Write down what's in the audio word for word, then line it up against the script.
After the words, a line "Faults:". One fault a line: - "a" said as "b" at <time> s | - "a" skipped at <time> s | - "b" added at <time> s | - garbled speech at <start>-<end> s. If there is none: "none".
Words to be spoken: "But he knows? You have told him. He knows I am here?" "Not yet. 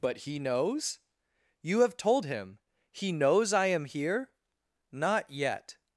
"But he knows? You have told him. He knows I am here?" "Not yet.
Faults:
none